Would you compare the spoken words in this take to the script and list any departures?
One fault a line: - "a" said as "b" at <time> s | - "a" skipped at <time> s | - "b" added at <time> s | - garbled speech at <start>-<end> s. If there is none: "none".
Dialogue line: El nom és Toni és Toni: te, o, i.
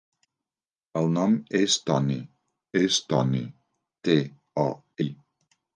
none